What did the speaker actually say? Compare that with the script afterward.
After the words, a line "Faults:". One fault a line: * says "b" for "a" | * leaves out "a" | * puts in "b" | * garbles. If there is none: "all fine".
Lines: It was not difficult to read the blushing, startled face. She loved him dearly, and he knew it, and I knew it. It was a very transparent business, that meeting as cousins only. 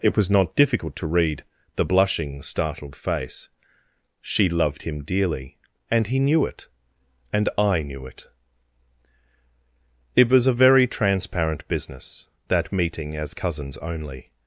It was not difficult to read the blushing, startled face. She loved him dearly, and he knew it, and I knew it. It was a very transparent business, that meeting as cousins only.
Faults:
all fine